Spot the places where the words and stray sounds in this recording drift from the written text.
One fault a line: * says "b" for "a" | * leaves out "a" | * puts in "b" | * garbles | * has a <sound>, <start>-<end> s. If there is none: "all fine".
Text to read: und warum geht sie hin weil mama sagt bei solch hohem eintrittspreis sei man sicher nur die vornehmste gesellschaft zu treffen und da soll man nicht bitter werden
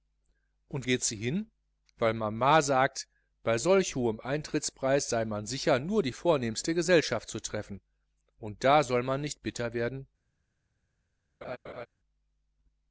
* leaves out "warum"
* has a laugh, 11.4-11.9 s